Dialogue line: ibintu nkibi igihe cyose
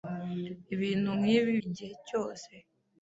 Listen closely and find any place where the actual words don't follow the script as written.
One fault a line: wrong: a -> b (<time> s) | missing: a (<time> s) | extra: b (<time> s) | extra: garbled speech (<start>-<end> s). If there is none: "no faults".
no faults